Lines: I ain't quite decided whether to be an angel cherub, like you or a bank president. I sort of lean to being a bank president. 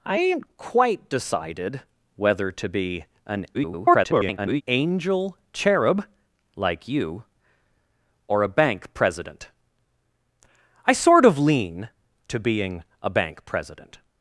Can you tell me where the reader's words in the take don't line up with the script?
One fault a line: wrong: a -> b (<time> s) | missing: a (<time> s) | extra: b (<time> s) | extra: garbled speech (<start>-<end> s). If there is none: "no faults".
extra: garbled speech (3.5-4.6 s)